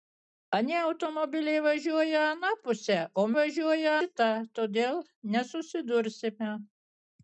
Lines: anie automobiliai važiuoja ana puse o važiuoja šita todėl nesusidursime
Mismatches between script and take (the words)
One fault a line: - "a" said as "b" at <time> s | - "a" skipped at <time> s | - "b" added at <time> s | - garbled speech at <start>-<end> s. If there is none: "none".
none